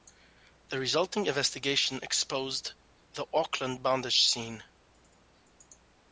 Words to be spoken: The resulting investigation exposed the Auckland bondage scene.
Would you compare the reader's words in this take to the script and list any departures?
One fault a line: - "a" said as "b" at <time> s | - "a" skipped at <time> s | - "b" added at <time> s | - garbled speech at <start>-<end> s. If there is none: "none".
none